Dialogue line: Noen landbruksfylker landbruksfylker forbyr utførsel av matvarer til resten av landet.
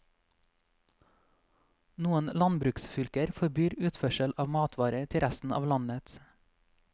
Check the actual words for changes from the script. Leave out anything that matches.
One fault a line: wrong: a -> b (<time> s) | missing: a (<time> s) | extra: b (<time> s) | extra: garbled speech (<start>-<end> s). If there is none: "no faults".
missing: landbruksfylker (3.3 s)